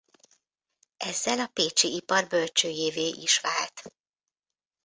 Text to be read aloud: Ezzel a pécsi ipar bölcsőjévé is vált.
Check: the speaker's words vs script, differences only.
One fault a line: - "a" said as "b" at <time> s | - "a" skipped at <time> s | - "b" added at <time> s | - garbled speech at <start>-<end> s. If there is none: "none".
none